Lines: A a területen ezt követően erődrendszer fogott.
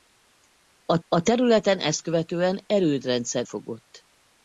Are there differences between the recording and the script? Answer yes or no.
no